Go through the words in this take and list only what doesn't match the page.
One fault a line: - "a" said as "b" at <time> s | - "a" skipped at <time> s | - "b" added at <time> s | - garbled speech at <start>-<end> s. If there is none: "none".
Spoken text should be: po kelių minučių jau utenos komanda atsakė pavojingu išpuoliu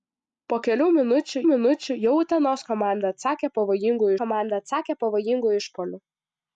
- "minučių" added at 1.5 s
- "komanda atsakė pavojingu" added at 4.2 s